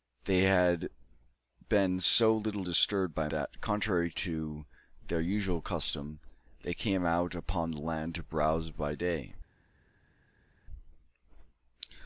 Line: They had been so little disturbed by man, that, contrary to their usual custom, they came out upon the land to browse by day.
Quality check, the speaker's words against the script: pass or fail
fail